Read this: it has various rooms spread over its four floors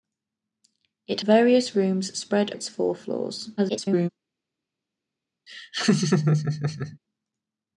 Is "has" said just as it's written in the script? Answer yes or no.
no